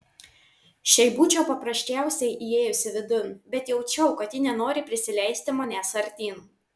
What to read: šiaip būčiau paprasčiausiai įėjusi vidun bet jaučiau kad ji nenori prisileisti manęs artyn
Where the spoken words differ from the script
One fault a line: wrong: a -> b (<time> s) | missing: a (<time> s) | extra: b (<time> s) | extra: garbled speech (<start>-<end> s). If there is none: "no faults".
no faults